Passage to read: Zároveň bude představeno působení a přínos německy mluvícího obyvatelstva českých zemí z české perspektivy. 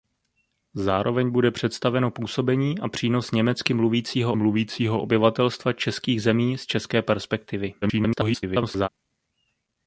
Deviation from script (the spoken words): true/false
true